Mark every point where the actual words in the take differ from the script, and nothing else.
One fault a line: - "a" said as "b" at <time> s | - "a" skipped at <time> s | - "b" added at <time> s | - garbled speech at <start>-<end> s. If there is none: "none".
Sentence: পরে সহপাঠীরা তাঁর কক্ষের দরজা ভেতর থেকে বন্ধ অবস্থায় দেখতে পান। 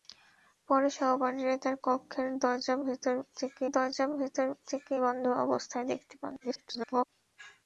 - "দরজা ভেতর থেকে" added at 3.7 s
- garbled speech at 6.4-7.0 s